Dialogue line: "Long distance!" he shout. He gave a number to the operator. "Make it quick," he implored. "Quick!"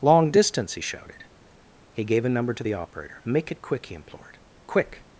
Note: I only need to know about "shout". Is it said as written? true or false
false